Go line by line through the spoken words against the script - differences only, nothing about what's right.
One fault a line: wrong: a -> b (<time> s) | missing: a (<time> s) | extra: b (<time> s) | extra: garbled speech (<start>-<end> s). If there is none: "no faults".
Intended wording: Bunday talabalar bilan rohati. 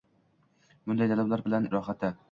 no faults